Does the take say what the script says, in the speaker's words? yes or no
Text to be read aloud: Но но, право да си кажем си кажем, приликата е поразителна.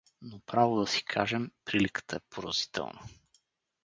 no